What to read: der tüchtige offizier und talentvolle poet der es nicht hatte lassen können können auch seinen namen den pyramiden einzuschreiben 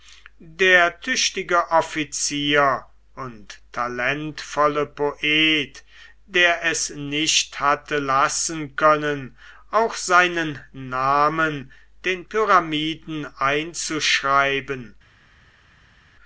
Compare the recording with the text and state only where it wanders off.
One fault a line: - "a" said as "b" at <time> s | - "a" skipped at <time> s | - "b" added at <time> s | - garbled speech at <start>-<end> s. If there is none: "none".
- "können" skipped at 9.4 s